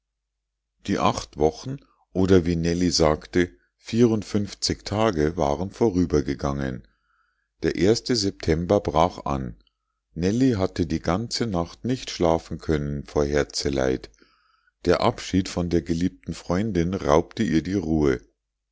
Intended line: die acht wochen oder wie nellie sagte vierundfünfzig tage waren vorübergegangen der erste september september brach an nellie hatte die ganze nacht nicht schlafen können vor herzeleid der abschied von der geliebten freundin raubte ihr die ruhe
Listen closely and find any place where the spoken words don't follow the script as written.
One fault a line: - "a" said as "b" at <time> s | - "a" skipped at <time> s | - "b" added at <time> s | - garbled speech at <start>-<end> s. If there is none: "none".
- "september" skipped at 8.8 s